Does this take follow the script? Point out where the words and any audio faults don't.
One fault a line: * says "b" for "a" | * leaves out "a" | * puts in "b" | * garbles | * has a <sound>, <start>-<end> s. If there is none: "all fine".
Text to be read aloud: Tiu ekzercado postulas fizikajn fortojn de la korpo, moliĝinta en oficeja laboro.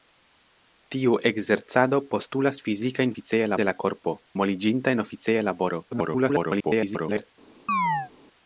* says "oficeja" for "fortojn"
* garbles
* has a chirp, 7.7-8.1 s